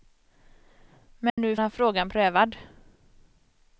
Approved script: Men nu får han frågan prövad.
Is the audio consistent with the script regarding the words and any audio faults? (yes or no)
no